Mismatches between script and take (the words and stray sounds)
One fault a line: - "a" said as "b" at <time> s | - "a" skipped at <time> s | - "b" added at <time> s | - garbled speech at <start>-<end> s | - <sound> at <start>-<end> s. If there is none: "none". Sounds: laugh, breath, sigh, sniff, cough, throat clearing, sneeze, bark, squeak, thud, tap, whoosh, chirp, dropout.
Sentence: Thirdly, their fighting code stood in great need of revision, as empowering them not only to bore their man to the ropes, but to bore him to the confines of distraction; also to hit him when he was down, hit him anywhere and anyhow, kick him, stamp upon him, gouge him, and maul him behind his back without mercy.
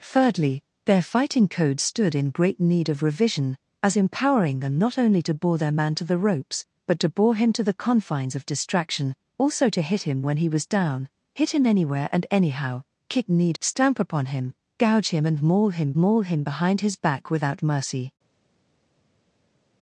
- "him" said as "need" at 13.3 s
- "maul him" added at 16.0 s